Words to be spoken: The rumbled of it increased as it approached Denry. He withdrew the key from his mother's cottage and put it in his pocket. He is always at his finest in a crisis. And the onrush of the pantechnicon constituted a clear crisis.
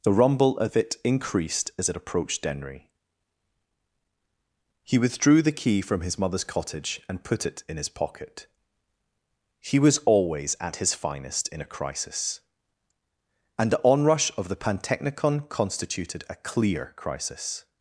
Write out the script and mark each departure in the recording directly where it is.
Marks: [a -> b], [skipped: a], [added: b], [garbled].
The [rumbled -> rumble] of it increased as it approached Denry. He withdrew the key from his mother's cottage and put it in his pocket. He [is -> was] always at his finest in a crisis. And the onrush of the pantechnicon constituted a clear crisis.